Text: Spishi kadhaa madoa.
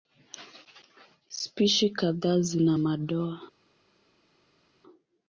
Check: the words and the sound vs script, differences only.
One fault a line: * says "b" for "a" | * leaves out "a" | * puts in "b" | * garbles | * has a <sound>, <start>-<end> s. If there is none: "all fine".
* puts in "zina"